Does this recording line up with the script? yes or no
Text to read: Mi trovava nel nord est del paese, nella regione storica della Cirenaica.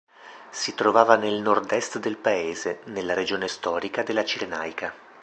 no